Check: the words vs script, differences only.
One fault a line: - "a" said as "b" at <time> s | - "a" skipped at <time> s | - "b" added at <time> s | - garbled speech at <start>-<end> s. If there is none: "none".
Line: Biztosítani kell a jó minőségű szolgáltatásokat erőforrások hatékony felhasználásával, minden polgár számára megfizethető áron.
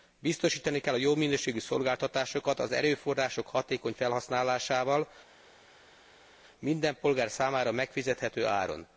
- "az" added at 2.6 s